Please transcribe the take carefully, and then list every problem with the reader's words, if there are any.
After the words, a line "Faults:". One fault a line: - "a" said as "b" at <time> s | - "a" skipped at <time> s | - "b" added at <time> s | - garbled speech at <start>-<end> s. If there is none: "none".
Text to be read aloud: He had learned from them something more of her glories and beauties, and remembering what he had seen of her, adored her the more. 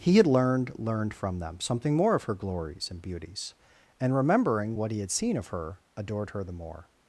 He had learned learned from them something more of her glories and beauties, and remembering what he had seen of her, adored her the more.
Faults:
- "learned" added at 0.8 s